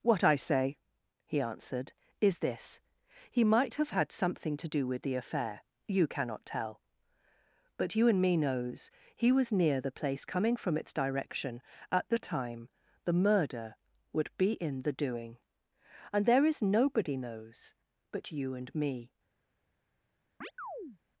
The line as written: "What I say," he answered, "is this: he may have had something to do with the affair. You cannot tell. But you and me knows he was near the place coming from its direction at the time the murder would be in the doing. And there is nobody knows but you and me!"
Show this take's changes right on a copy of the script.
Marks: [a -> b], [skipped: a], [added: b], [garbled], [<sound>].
"What I say," he answered, "is this: he [may -> might] have had something to do with the affair. You cannot tell. But you and me knows he was near the place coming from its direction at the time the murder would be in the doing. And there is nobody knows but you and me!" [chirp]